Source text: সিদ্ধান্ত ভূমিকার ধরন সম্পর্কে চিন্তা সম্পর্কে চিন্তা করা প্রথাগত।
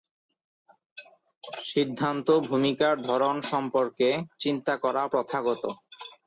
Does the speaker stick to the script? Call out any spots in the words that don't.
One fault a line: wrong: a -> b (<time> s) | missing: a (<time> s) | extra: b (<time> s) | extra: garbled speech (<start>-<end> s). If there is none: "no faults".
missing: সম্পর্কে চিন্তা (4.7 s)